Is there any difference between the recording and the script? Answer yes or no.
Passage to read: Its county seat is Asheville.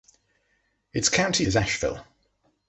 yes